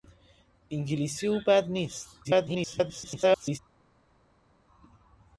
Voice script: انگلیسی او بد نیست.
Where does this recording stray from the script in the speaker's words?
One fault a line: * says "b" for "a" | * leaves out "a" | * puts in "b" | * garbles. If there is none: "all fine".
* garbles